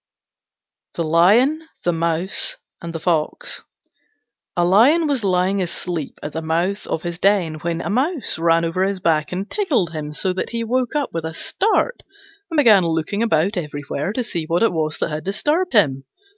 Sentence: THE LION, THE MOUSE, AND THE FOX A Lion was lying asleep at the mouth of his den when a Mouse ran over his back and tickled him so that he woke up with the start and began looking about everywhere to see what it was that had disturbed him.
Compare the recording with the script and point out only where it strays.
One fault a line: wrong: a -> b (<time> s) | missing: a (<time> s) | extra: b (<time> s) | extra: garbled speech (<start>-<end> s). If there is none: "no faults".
wrong: the -> a (11.2 s)